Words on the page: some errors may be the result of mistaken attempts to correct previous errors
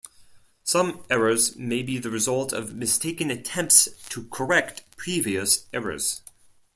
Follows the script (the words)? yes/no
yes